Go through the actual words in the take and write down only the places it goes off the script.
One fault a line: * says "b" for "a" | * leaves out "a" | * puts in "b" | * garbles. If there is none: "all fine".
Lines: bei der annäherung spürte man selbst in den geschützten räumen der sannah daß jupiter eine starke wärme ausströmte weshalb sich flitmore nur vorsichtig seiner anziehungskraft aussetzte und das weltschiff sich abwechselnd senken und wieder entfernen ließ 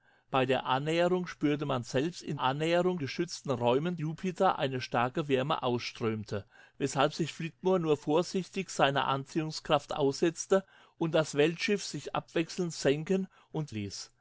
* says "annäherung" for "den"
* leaves out "der sannah daß"
* leaves out "wieder entfernen"